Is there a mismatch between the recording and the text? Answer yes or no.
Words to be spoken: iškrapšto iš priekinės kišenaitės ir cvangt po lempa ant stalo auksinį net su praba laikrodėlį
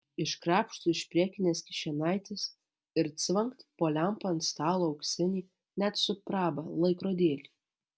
no